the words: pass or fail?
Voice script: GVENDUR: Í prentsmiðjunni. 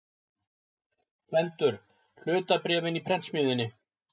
fail